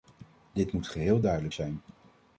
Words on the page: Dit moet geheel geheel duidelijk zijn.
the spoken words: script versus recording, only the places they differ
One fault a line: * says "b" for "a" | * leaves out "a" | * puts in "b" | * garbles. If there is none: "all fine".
* leaves out "geheel"